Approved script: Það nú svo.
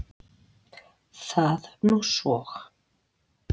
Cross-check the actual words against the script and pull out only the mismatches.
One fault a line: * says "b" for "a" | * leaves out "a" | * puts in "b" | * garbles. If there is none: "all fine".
all fine